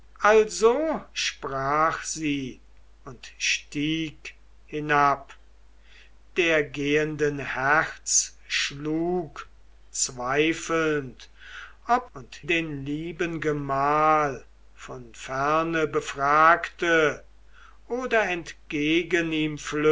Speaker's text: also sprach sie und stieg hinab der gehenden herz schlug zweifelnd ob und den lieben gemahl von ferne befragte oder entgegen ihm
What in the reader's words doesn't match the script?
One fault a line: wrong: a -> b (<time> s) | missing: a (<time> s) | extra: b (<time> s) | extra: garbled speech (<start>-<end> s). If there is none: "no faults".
no faults